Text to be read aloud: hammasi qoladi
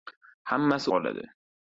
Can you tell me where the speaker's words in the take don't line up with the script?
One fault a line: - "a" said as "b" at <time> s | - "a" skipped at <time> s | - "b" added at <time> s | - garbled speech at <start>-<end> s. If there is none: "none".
none